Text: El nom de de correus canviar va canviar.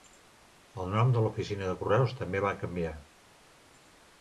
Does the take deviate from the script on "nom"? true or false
false